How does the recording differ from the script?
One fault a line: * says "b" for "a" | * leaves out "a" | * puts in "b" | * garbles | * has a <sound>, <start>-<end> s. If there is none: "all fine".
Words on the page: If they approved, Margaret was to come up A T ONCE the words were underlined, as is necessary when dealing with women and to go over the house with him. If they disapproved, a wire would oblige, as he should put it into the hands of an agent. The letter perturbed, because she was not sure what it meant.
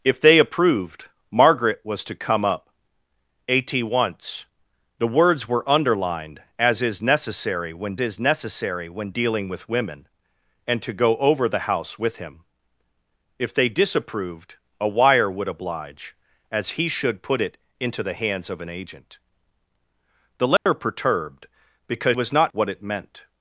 * puts in "is necessary when"
* has a dropout, 20.6-20.7 s
* leaves out "she"
* leaves out "sure"